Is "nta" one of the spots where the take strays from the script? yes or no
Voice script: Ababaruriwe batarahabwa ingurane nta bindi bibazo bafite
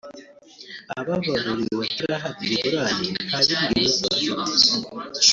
no